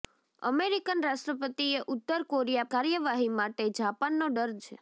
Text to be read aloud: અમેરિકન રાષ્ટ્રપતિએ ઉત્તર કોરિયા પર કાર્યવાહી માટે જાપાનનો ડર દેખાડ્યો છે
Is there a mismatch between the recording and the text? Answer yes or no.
yes